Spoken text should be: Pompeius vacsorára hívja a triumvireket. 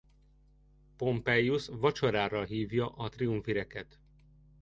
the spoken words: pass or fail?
pass